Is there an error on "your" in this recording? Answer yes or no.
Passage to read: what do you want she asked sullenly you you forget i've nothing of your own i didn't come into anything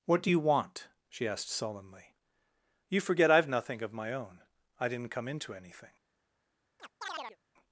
yes